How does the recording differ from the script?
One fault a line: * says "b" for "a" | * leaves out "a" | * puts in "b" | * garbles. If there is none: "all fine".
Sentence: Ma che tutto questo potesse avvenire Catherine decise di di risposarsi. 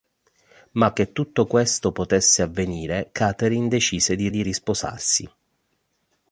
all fine